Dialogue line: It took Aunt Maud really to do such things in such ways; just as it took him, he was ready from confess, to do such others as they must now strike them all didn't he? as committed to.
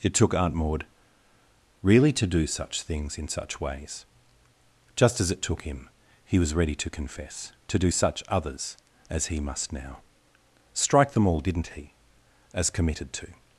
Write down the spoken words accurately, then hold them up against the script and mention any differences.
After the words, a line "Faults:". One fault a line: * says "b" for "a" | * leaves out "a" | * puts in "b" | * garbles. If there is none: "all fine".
It took Aunt Maud really to do such things in such ways; just as it took him, he was ready to confess, to do such others as he must now strike them all didn't he? as committed to.
Faults:
* says "to" for "from"
* says "he" for "they"